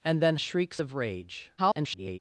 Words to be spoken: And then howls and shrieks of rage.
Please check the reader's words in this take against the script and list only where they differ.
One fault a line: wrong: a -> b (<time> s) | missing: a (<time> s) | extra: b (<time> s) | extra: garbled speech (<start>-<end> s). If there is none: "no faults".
missing: howls and (0.3 s)
extra: garbled speech (1.6-2.2 s)